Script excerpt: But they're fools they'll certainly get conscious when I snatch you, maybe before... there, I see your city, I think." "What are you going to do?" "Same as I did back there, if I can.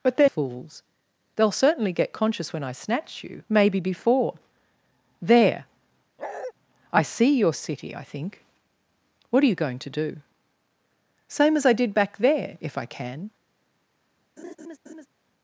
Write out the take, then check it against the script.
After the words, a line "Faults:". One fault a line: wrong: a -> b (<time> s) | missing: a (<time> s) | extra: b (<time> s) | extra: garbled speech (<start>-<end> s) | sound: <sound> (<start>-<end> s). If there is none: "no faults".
But they're fools they'll certainly get conscious when I snatch you, maybe before... there, I see your city, I think." "What are you going to do?" "Same as I did back there, if I can.
Faults:
sound: bark (6.2-6.5 s)
sound: laugh (14.4-15.1 s)